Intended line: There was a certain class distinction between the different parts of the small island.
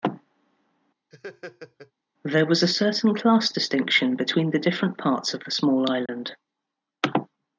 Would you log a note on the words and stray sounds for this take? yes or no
yes